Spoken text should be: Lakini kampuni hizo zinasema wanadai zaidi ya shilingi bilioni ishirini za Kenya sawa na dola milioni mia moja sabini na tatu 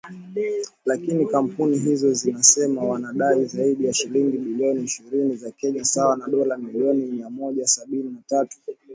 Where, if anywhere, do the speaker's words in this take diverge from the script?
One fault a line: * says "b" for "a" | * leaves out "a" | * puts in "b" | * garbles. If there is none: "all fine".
all fine